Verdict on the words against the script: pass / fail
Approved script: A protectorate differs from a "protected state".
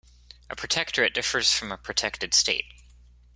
pass